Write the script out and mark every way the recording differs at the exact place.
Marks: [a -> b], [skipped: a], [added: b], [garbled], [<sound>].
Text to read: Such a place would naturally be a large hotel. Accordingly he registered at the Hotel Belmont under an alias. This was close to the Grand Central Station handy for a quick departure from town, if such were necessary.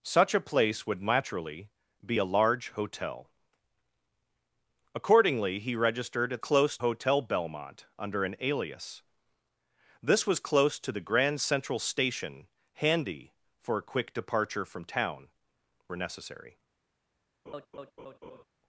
Such a place would naturally be a large hotel. Accordingly he registered at [the -> close] Hotel Belmont under an alias. This was close to the Grand Central Station handy for a quick departure from town, [skipped: if such] were necessary. [laugh]